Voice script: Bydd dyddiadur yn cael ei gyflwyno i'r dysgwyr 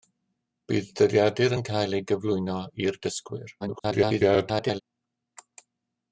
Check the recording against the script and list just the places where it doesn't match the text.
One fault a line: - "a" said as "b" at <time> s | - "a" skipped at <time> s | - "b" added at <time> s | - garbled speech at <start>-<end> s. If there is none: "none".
- garbled speech at 3.6-4.8 s